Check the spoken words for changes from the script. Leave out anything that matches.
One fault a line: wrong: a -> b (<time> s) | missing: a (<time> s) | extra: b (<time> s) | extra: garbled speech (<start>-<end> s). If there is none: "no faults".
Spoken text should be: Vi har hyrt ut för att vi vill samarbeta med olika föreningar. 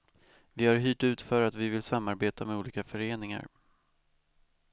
no faults